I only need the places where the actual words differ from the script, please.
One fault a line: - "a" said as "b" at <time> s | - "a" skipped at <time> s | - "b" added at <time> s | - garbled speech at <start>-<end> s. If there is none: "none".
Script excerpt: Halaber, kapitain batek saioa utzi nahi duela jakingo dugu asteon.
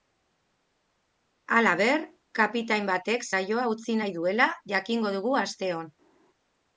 none